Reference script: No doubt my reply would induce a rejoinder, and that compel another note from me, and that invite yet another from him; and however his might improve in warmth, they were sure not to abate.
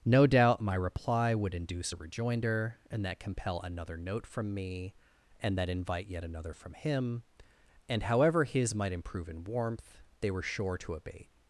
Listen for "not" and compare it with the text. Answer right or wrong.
wrong